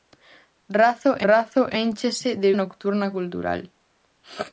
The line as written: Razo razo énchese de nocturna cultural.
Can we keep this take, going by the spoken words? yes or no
yes